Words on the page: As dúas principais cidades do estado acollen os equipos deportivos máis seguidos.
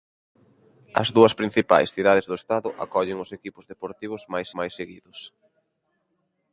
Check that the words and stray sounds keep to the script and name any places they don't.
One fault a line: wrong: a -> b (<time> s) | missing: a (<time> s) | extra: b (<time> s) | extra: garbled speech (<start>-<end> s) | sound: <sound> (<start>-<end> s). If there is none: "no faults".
extra: máis (4.6 s)